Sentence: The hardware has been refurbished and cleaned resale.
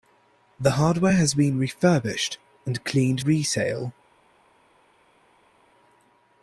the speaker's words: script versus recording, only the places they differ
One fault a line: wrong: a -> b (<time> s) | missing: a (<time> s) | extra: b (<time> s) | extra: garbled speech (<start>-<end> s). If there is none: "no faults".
no faults